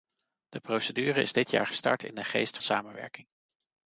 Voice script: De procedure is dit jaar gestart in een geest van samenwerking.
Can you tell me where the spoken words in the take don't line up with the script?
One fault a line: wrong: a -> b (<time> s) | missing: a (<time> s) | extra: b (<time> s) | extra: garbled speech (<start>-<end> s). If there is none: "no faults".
missing: van (2.6 s)